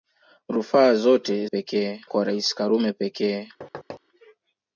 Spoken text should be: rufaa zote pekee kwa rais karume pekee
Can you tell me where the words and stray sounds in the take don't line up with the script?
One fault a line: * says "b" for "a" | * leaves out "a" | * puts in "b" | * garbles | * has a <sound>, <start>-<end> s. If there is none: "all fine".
* has a thud, 3.6-4.0 s